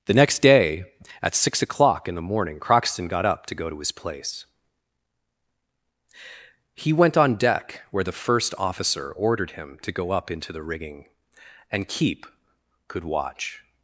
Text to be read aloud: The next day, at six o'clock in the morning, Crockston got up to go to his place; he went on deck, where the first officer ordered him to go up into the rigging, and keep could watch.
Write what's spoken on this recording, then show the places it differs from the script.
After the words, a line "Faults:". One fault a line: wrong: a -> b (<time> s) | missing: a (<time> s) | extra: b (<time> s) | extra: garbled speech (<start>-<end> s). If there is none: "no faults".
The next day, at six o'clock in the morning, Crockston got up to go to his place; he went on deck, where the first officer ordered him to go up into the rigging, and keep could watch.
Faults:
no faults